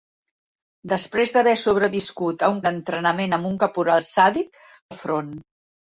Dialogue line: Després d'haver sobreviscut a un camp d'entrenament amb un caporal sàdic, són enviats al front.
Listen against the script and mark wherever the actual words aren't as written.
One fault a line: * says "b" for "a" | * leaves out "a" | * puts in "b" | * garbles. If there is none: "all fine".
* leaves out "camp"
* leaves out "són enviats"